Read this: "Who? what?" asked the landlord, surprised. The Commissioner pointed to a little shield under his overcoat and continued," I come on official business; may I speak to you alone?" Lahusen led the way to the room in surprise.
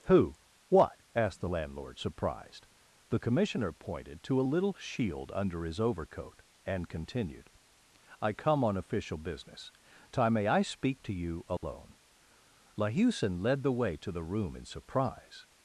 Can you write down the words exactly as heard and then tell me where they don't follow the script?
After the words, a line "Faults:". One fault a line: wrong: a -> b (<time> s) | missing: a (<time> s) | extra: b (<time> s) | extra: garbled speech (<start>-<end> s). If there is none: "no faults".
"Who? what?" asked the landlord, surprised. The Commissioner pointed to a little shield under his overcoat and continued," I come on official business; time may I speak to you alone?" Lahusen led the way to the room in surprise.
Faults:
extra: time (10.1 s)